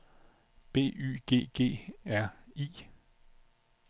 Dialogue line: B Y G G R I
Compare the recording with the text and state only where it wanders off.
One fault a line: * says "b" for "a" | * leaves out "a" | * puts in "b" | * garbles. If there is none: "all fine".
all fine